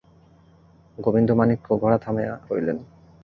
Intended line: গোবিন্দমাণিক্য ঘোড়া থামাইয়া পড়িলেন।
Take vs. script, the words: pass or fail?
pass